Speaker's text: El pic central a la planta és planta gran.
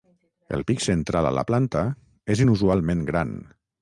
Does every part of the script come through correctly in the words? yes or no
no